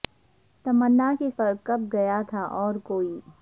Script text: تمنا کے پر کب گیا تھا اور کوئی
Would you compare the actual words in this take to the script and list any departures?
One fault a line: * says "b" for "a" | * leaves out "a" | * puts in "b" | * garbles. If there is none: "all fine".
all fine